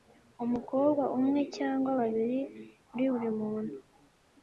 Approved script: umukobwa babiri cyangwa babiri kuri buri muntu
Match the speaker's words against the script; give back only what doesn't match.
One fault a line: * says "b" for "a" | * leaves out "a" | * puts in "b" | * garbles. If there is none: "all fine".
* says "umwe" for "babiri"